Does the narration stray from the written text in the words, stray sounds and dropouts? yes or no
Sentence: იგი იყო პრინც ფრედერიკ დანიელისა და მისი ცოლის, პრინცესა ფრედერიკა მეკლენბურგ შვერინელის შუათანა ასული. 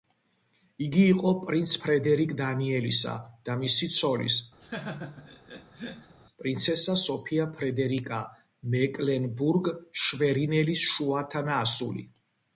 yes